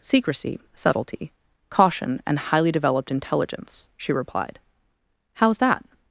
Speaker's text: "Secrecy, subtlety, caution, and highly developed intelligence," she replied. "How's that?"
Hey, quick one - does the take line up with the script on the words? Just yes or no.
yes